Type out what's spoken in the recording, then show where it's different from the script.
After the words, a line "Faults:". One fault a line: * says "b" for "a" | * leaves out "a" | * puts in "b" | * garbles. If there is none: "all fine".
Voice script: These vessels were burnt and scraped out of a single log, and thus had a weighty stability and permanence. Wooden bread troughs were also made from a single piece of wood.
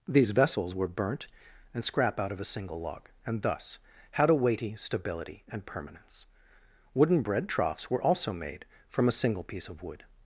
These vessels were burnt and scrap out of a single log, and thus had a weighty stability and permanence. Wooden bread troughs were also made from a single piece of wood.
Faults:
* says "scrap" for "scraped"